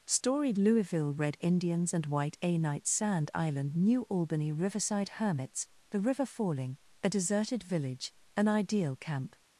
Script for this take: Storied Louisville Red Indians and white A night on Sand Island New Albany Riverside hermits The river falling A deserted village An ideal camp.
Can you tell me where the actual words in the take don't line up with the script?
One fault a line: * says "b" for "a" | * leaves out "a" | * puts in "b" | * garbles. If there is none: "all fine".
* leaves out "on"